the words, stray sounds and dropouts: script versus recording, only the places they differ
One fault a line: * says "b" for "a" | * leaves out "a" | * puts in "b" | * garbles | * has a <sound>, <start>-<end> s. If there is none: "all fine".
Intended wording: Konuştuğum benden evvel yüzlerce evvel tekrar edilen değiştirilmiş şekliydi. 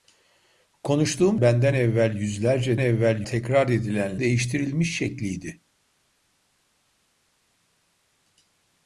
all fine